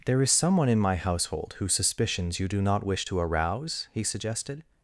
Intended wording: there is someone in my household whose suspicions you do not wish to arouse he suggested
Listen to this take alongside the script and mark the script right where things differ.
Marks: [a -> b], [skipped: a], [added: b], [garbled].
there is someone in my household whose suspicions you do not wish to arouse he suggested